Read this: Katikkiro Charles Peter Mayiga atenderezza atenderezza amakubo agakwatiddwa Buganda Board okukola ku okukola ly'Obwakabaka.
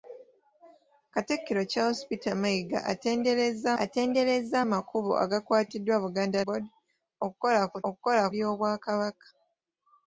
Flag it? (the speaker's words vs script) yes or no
no